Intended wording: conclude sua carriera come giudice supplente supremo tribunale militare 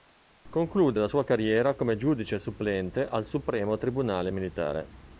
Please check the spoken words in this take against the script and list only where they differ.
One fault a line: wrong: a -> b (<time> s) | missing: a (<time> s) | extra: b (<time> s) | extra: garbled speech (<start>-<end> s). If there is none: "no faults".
extra: la (1.0 s)
extra: al (3.0 s)